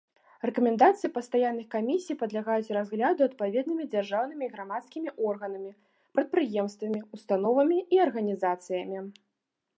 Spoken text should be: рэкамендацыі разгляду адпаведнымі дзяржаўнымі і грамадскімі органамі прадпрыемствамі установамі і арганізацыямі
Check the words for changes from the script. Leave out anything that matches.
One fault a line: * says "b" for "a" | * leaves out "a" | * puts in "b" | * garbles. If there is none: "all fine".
* puts in "пастаянных камісій падлягаюць"